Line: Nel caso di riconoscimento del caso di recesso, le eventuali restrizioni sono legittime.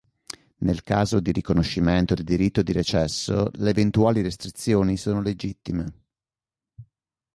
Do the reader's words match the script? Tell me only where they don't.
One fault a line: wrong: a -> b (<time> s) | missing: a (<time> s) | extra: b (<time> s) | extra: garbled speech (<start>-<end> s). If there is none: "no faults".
wrong: caso -> diritto (2.2 s)